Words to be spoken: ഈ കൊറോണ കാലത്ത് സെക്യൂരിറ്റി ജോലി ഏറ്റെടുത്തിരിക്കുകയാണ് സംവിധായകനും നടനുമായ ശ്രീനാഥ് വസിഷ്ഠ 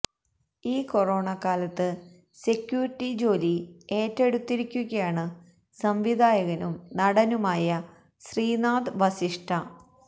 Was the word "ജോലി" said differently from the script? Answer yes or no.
no